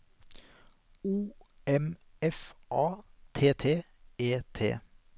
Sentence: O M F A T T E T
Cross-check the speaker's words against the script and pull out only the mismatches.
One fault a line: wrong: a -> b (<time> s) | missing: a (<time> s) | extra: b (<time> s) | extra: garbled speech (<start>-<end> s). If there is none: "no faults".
no faults